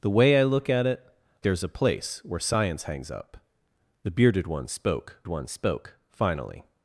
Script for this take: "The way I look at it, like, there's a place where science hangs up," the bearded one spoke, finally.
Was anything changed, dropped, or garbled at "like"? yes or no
yes